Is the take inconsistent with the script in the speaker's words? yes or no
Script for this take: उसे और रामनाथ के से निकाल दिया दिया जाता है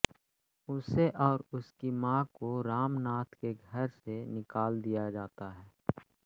yes